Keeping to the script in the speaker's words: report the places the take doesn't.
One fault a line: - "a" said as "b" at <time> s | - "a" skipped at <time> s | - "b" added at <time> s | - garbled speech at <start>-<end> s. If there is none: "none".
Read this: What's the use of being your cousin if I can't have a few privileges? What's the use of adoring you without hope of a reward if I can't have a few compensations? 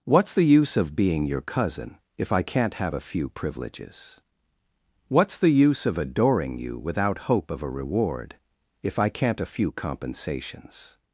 - "have" skipped at 9.4 s